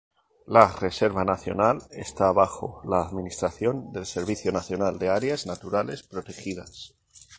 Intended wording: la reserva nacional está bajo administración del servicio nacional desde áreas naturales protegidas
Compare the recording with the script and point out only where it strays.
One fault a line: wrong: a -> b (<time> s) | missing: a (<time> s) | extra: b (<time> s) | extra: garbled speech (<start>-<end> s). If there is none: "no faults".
extra: la (2.9 s)
wrong: desde -> de (5.0 s)